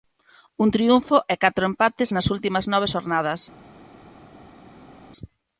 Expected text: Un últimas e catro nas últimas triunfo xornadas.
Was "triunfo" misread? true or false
true